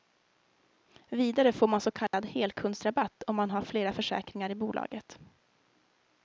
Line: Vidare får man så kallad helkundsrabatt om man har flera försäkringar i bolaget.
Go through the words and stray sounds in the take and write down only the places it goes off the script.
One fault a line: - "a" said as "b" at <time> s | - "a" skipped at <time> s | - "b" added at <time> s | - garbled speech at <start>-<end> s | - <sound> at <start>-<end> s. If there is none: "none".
- dropout at 2.1-2.1 s